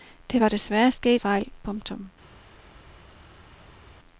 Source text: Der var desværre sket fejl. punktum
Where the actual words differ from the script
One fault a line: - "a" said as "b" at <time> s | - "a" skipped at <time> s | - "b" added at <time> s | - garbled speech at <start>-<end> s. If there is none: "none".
none